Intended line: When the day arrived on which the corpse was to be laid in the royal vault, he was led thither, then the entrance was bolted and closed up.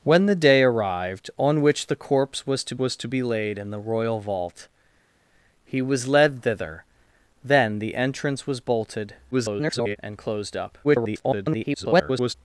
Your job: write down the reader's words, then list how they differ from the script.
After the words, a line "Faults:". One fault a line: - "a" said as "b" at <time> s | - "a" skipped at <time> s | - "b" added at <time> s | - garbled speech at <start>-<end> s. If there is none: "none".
When the day arrived on which the corpse was to was to be laid in the royal vault, he was led thither, then the entrance was bolted [garbled] and closed up. [garbled]
Faults:
- "was to" added at 2.8 s
- garbled speech at 9.3-10.0 s
- garbled speech at 10.8-12.3 s